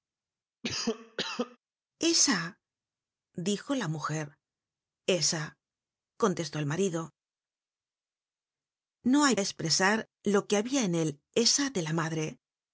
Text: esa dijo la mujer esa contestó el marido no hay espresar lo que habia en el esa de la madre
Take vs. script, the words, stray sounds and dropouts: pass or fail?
fail